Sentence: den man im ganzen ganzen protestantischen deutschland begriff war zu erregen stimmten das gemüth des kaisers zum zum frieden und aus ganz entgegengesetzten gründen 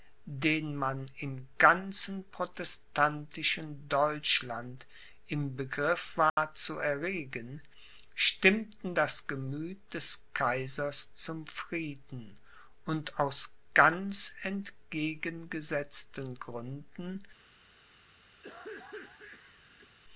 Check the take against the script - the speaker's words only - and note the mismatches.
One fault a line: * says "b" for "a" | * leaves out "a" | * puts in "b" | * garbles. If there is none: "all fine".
* leaves out "ganzen"
* puts in "im"
* leaves out "zum"